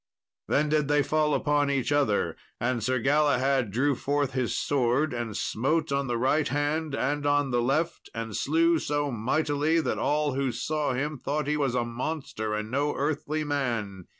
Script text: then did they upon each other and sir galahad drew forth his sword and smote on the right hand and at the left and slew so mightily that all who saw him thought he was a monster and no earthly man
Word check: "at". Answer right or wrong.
wrong